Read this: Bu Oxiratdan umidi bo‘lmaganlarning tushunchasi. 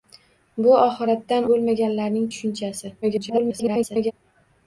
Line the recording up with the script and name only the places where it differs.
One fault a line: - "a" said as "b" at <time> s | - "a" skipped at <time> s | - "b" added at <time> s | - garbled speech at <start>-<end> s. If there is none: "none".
- "umidi" skipped at 1.4 s
- garbled speech at 3.0-4.1 s